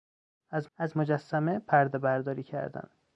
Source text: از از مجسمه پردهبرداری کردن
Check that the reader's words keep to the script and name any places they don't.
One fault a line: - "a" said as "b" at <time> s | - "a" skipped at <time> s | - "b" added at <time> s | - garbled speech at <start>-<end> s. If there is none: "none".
none